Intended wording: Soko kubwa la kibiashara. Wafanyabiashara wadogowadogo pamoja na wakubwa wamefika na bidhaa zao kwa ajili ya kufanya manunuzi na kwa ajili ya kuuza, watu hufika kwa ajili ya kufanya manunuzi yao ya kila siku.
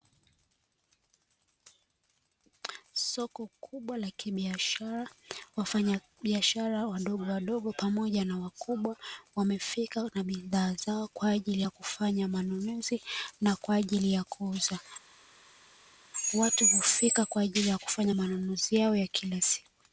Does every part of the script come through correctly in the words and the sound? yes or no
yes